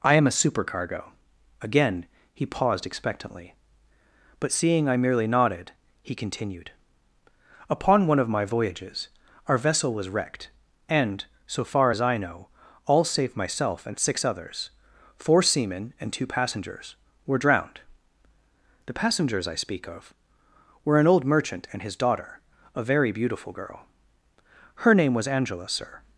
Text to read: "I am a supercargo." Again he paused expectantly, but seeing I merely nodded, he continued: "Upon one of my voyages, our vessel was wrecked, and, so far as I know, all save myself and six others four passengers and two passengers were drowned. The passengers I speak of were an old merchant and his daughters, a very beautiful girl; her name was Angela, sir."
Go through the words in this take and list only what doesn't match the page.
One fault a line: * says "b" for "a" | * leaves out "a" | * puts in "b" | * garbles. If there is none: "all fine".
* says "seamen" for "passengers"
* says "daughter" for "daughters"